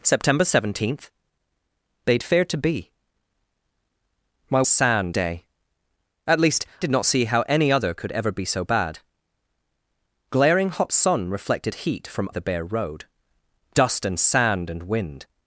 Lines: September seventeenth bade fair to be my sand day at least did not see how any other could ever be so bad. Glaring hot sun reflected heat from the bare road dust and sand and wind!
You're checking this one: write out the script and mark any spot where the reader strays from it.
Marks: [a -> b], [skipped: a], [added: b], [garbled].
September seventeenth bade fair to be my sand day at least did not see how any other could ever be so bad. Glaring hot sun reflected heat from the bare road dust and sand and wind!